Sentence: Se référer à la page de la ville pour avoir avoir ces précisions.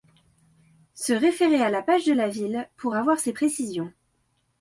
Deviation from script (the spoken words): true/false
true